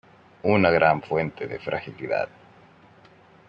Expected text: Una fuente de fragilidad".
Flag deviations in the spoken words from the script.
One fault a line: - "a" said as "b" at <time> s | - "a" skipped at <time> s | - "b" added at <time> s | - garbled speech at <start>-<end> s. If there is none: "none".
- "gran" added at 0.7 s